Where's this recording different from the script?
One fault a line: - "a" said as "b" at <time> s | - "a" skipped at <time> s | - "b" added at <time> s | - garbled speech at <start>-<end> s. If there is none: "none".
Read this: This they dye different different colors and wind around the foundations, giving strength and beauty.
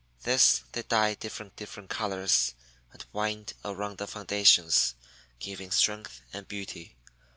none